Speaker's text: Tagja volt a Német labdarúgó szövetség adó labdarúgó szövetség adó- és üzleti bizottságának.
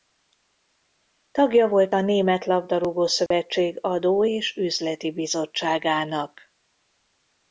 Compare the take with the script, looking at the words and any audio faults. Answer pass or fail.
fail